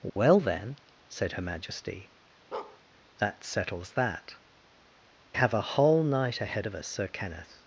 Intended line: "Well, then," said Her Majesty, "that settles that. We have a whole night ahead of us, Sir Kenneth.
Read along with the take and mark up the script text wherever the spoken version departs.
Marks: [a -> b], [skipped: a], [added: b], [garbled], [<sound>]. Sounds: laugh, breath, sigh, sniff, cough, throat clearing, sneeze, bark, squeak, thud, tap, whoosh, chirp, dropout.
"Well, [dropout] then," said Her Majesty, [bark] "that settles that. [skipped: We] have a whole night ahead of us, Sir Kenneth.